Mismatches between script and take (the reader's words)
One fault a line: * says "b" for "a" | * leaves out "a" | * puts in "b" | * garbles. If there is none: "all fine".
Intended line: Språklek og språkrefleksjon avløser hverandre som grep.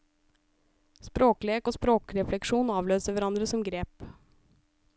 all fine